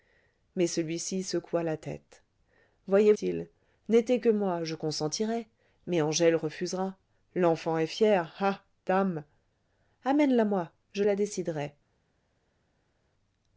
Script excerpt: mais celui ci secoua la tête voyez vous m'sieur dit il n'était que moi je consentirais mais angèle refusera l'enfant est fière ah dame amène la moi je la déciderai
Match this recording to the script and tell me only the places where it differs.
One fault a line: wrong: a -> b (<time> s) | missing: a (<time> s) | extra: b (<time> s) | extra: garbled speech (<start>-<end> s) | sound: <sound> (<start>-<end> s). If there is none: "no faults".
missing: vous m'sieur dit (3.1 s)